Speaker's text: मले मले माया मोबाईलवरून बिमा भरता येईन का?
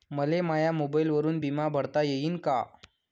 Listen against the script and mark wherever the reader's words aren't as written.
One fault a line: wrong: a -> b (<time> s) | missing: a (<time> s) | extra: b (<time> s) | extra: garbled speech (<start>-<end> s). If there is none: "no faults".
missing: मले (0.4 s)